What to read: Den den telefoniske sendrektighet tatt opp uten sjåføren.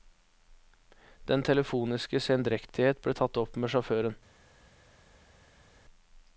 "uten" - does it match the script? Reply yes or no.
no